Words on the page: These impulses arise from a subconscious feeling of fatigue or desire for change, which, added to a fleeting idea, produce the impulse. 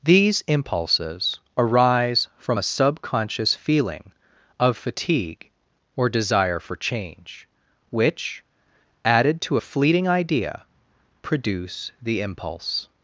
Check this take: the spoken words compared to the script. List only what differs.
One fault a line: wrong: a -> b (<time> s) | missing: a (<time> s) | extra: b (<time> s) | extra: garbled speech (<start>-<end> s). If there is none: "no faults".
no faults